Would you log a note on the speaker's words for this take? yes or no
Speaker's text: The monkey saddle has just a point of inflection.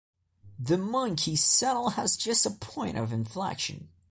no